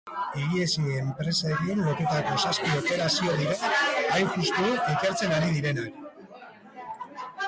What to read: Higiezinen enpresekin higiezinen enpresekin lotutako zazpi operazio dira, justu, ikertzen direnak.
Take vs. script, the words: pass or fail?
fail